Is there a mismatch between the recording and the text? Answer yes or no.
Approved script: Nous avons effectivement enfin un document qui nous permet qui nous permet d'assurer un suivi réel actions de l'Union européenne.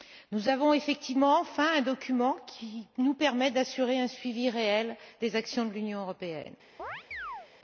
yes